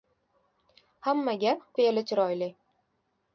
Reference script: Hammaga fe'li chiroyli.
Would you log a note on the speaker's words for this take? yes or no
no